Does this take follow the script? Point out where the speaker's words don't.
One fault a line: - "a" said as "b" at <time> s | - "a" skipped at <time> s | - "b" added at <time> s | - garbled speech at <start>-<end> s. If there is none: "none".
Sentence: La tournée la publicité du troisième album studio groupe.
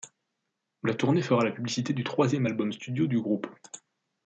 - "fera" added at 1.2 s
- "du" added at 3.1 s